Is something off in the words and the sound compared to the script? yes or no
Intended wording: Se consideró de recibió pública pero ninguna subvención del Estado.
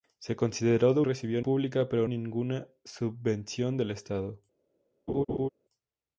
yes